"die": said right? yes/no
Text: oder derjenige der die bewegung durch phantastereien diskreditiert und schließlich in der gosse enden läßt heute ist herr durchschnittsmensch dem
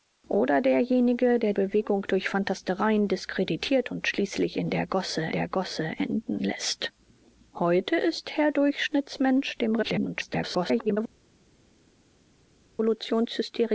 no